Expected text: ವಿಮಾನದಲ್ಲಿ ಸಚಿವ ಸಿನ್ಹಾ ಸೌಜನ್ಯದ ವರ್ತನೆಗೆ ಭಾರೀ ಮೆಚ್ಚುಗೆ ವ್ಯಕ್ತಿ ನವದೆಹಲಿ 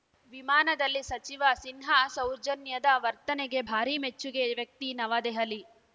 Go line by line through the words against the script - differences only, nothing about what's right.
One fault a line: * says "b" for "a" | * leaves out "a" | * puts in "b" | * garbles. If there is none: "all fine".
all fine